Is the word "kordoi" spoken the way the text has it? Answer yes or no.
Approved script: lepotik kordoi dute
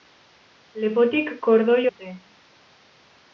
yes